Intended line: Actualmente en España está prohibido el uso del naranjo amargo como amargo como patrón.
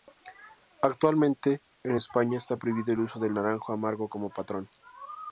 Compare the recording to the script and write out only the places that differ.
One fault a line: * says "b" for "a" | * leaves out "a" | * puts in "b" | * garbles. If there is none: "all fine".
* leaves out "amargo como"